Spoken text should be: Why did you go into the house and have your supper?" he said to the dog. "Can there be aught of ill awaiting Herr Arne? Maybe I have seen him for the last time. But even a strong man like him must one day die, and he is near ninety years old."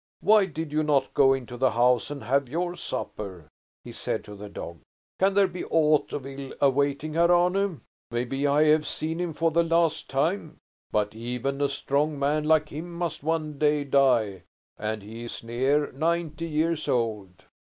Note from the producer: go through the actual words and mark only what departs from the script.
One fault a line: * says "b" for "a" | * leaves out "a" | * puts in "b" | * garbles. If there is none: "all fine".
* puts in "not"